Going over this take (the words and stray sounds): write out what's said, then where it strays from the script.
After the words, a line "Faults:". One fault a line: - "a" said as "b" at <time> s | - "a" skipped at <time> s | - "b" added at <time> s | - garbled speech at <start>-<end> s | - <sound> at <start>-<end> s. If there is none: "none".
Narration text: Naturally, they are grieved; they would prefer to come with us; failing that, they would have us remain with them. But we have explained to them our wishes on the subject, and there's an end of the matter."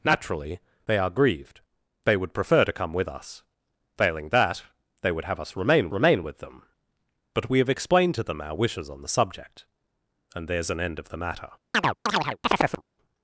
Naturally, they are grieved; they would prefer to come with us; failing that, they would have us remain remain with them. But we have explained to them our wishes on the subject, and there's an end of the matter."
Faults:
- "remain" added at 5.9 s
- chirp at 11.7-12.8 s